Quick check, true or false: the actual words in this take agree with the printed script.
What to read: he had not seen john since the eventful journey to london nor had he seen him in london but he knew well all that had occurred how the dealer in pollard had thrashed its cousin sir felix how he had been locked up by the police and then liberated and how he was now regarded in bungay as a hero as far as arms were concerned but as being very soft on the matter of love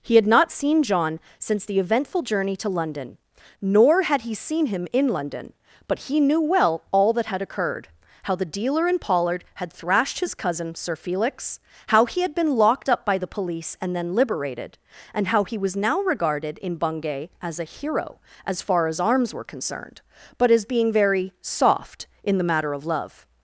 false